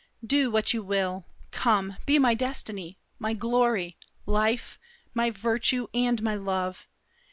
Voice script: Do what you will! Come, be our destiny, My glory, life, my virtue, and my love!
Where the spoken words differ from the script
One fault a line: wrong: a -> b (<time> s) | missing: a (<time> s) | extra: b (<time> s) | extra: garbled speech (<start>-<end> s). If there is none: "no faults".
wrong: our -> my (2.2 s)